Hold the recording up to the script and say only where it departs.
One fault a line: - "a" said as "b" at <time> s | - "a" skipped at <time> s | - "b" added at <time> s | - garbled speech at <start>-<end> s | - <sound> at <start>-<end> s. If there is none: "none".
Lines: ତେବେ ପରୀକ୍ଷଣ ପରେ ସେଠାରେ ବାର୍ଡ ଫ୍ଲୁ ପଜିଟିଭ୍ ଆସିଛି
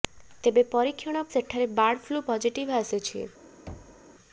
- "ପରେ" skipped at 1.2 s
- thud at 3.7-4.0 s